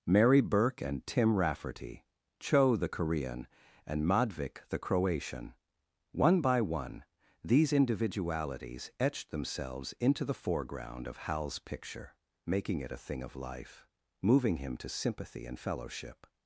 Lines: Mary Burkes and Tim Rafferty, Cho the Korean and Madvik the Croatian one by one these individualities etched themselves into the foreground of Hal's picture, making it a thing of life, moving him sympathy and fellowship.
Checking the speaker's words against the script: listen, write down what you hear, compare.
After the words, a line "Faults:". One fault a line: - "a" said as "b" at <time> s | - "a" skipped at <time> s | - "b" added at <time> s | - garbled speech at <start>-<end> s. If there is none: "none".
Mary Burke and Tim Rafferty, Cho the Korean and Madvik the Croatian one by one these individualities etched themselves into the foreground of Hal's picture, making it a thing of life, moving him to sympathy and fellowship.
Faults:
- "Burkes" said as "Burke" at 0.4 s
- "to" added at 14.8 s